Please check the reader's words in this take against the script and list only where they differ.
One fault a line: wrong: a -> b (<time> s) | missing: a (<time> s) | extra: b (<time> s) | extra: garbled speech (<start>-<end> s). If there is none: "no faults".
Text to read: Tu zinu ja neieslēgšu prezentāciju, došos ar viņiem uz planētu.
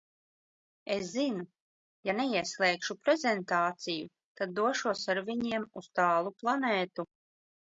wrong: Tu -> Es (0.9 s)
extra: tad (4.4 s)
extra: tālu (6.0 s)